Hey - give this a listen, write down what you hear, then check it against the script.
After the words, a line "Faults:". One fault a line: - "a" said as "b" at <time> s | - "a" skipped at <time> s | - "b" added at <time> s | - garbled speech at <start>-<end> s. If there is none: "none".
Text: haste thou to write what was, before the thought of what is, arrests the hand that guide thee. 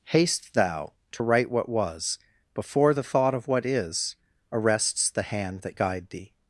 haste thou to write what was, before the thought of what is, arrests the hand that guide thee.
Faults:
none